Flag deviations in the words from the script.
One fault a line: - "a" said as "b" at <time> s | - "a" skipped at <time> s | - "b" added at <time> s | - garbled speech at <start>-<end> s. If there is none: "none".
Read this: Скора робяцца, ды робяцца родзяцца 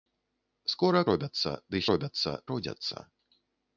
none